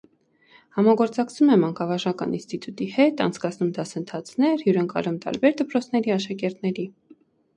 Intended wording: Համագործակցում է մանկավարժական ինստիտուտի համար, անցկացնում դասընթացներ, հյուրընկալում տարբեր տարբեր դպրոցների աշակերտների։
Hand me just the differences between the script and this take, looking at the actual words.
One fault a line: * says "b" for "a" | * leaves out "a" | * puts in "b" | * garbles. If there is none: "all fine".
* says "հետ" for "համար"
* leaves out "տարբեր"